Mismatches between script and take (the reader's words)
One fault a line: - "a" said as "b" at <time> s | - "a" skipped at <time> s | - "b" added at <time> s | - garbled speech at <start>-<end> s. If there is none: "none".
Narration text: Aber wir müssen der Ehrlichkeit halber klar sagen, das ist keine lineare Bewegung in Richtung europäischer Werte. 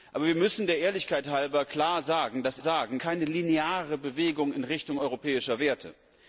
- "ist" said as "sagen" at 2.6 s